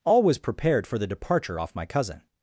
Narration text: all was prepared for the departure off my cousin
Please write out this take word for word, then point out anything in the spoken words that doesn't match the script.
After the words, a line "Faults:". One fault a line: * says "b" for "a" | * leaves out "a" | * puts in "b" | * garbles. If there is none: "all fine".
all was prepared for the departure off my cousin
Faults:
all fine